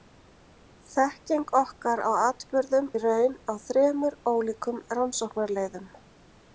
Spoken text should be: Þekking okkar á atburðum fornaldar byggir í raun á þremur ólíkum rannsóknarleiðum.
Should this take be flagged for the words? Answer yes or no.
yes